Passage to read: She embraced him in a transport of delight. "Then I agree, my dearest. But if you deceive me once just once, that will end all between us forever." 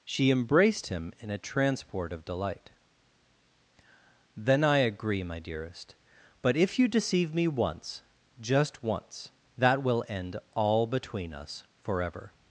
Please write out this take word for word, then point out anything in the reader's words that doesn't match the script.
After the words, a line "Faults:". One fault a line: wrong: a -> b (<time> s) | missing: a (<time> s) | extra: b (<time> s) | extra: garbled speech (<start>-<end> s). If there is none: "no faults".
She embraced him in a transport of delight. "Then I agree, my dearest. But if you deceive me once just once, that will end all between us forever."
Faults:
no faults